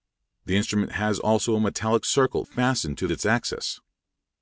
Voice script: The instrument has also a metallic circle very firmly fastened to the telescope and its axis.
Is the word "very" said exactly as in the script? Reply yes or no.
no